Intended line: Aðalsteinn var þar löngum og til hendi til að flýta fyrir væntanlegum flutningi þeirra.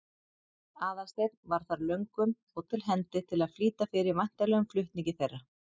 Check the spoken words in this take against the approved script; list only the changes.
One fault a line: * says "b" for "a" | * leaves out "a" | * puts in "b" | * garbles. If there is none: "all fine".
all fine